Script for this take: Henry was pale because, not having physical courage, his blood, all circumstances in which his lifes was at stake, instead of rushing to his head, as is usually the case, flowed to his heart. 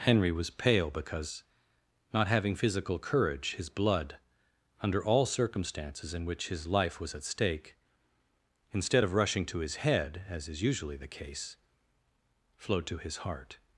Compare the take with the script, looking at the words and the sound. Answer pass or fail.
fail